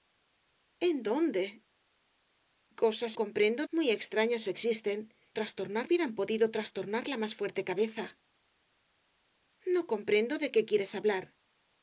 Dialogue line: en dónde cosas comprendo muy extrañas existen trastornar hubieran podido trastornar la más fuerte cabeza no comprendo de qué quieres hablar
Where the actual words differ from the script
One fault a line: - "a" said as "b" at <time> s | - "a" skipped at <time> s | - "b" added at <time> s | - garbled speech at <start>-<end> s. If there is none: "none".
none